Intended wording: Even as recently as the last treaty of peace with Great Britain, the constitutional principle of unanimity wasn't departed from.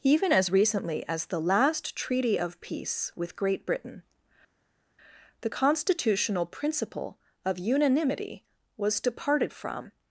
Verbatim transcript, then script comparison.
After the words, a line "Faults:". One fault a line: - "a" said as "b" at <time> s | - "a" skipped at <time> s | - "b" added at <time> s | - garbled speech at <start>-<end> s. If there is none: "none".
Even as recently as the last treaty of peace with Great Britain, the constitutional principle of unanimity was departed from.
Faults:
- "wasn't" said as "was" at 8.8 s